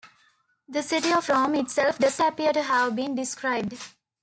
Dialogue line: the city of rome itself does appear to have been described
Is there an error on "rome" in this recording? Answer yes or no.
no